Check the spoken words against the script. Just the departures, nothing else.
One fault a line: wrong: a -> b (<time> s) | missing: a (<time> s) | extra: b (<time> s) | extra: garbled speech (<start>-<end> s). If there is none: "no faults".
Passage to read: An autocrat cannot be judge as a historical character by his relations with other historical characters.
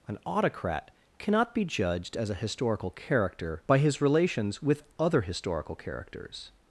wrong: judge -> judged (1.6 s)